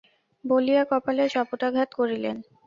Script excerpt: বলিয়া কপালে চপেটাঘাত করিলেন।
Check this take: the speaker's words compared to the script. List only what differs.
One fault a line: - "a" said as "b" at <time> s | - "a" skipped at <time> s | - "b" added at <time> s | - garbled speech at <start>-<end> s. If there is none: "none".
none